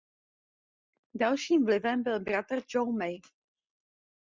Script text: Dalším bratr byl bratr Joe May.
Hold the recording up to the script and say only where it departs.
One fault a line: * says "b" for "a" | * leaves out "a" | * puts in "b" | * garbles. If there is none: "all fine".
* says "vlivem" for "bratr"